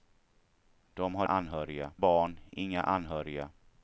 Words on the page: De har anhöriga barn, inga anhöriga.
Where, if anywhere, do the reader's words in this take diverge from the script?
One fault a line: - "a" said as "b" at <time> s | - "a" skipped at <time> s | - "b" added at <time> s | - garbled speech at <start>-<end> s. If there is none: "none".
none